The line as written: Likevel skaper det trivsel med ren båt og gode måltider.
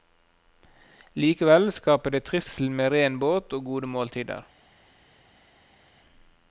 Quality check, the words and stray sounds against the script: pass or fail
pass